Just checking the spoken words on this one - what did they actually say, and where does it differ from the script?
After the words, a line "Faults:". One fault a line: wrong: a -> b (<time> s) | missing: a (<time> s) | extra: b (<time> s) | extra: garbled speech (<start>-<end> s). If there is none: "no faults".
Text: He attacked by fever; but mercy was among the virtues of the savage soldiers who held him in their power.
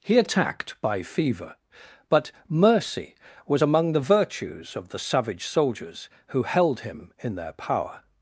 He attacked by fever; but mercy was among the virtues of the savage soldiers who held him in their power.
Faults:
no faults